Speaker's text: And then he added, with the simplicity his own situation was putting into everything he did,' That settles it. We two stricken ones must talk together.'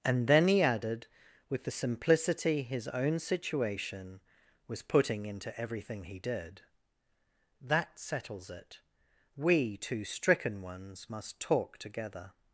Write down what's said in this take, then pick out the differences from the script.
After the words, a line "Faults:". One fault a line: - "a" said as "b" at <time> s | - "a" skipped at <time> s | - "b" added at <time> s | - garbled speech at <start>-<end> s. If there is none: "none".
And then he added, with the simplicity his own situation was putting into everything he did,' That settles it. We two stricken ones must talk together.'
Faults:
none